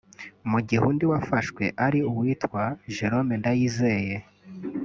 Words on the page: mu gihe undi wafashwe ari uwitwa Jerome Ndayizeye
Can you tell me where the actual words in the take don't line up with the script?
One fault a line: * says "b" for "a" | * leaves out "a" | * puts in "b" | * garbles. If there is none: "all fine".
all fine